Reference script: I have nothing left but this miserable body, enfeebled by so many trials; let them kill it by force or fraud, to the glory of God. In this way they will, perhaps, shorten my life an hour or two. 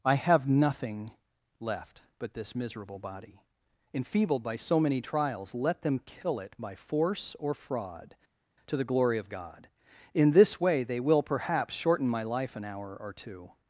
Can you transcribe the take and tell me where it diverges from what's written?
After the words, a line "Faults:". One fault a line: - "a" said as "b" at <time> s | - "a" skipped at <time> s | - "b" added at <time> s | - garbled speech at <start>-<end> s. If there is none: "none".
I have nothing left but this miserable body, enfeebled by so many trials; let them kill it by force or fraud, to the glory of God. In this way they will, perhaps, shorten my life an hour or two.
Faults:
none